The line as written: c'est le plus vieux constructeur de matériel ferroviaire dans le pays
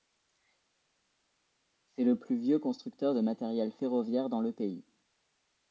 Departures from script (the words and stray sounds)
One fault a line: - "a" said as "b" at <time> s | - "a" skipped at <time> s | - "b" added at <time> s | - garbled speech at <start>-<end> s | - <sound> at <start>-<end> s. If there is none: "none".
none